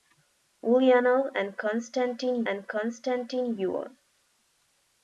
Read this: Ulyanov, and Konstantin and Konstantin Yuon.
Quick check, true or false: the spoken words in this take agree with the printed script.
true